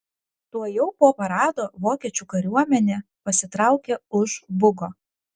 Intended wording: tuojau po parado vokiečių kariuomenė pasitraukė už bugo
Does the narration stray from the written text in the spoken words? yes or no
no